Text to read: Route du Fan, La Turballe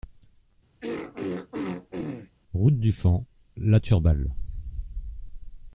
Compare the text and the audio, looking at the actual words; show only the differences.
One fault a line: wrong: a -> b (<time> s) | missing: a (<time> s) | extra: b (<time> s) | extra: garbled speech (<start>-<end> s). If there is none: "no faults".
no faults